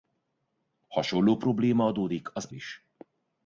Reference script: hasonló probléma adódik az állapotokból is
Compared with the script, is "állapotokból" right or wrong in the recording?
wrong